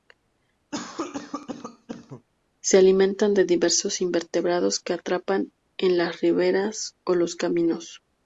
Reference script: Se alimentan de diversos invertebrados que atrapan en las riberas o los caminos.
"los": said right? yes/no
yes